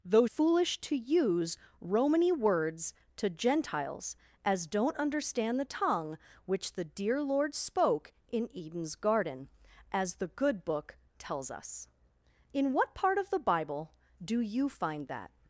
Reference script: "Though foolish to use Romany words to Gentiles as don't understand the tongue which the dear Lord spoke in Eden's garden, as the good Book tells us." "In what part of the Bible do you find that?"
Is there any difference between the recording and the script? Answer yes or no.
no